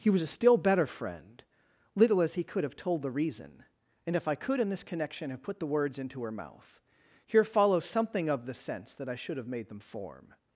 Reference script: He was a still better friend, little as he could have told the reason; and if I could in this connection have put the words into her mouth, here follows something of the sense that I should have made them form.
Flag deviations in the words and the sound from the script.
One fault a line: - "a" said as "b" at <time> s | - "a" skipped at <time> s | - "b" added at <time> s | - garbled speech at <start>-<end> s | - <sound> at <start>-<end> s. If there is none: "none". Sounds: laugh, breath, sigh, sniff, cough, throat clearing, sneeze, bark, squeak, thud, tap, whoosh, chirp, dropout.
none